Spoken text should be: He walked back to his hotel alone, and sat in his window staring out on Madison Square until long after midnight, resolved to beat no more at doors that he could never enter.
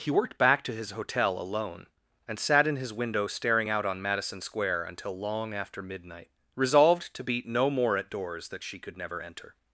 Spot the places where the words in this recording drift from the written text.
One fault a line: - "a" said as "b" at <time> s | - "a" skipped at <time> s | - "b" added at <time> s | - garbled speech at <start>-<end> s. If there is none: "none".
- "walked" said as "worked" at 0.1 s
- "he" said as "she" at 8.6 s